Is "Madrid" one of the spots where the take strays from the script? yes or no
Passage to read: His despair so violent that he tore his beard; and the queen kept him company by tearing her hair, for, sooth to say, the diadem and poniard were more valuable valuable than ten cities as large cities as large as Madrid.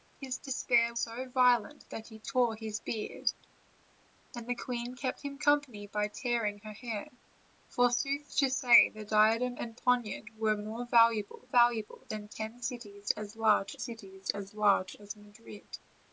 no